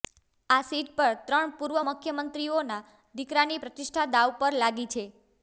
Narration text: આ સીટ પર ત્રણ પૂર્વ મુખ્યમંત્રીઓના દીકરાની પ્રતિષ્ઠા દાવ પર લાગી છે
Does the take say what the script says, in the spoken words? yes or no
yes